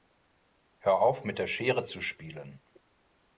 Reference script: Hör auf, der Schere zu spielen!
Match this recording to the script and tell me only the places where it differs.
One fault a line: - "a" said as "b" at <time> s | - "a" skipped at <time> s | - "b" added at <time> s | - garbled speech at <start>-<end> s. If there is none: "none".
- "mit" added at 1.2 s